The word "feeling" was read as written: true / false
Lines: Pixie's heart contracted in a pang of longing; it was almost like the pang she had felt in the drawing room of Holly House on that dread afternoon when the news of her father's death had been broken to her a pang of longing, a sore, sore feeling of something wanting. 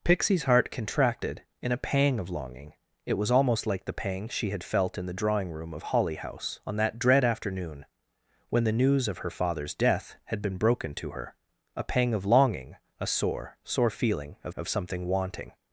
true